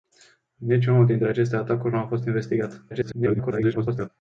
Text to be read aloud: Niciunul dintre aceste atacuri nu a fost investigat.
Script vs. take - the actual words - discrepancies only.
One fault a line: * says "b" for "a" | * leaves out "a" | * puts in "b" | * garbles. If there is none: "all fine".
* garbles